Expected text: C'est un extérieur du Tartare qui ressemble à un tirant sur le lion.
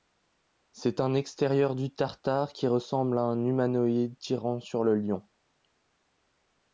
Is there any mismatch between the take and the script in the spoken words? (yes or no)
yes